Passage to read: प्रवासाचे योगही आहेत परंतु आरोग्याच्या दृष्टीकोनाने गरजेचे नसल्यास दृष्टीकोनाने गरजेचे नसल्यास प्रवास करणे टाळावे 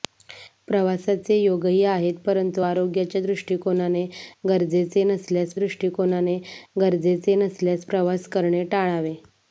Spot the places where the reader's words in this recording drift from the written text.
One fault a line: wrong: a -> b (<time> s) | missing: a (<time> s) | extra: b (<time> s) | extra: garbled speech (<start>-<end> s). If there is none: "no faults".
no faults